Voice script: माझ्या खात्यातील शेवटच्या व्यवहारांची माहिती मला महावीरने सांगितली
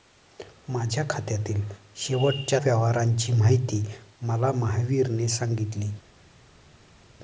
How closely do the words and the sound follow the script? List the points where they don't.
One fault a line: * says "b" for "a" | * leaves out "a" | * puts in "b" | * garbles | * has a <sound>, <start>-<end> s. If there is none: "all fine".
all fine